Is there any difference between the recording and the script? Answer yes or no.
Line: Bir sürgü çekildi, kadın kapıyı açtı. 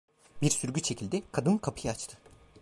no